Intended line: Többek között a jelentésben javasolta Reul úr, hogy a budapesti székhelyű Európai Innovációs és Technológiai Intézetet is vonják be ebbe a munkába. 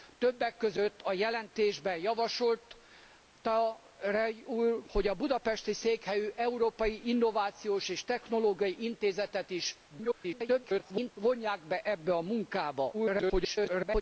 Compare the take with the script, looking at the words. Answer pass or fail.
fail